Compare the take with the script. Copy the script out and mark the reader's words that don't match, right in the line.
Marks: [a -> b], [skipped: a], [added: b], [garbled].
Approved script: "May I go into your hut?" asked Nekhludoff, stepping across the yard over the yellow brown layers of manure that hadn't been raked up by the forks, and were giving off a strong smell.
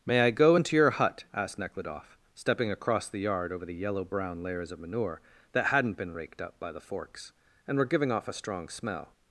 "May I go into your hut?" asked Nekhludoff, stepping across the yard over the yellow brown layers of manure that hadn't been raked up by the forks, and were giving off a strong smell.